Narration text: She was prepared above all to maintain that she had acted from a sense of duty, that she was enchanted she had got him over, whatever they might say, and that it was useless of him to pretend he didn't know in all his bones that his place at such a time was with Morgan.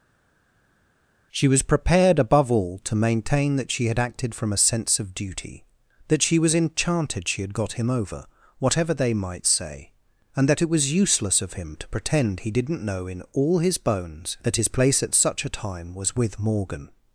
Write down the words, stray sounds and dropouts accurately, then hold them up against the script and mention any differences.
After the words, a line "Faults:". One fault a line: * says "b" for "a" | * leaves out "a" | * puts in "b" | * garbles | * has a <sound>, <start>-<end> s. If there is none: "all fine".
She was prepared above all to maintain that she had acted from a sense of duty, that she was enchanted she had got him over, whatever they might say, and that it was useless of him to pretend he didn't know in all his bones that his place at such a time was with Morgan.
Faults:
all fine